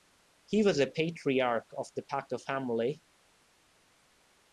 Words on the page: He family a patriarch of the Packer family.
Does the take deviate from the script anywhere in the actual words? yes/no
yes